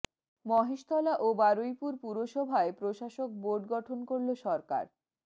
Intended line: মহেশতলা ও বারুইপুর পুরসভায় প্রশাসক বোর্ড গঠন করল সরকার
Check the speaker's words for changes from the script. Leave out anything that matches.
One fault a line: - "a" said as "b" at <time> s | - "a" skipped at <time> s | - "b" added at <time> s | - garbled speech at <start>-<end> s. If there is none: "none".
none